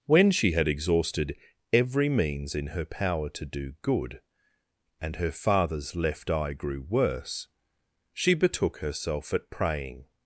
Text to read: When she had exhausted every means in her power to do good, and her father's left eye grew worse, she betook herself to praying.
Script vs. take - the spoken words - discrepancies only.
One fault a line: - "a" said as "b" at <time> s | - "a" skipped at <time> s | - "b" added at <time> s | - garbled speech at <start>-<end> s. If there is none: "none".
- "to" said as "at" at 9.3 s